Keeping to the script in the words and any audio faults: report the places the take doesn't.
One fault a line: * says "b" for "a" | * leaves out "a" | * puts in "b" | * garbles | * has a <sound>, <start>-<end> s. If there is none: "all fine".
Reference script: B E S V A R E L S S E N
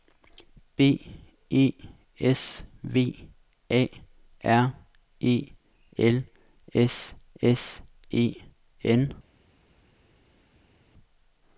all fine